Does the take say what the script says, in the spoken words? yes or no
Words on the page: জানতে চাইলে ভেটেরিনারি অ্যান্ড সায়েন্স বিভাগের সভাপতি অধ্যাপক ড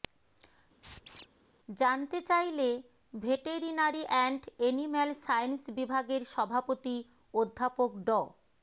no